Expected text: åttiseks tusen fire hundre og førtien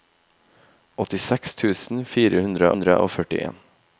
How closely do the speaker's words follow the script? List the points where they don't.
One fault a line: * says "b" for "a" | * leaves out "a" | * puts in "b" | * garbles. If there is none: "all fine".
* puts in "hundre"